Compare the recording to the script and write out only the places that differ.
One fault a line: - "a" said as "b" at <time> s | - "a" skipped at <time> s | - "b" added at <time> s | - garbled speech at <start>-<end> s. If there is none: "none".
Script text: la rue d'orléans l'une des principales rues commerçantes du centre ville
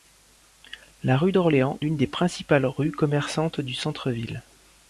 none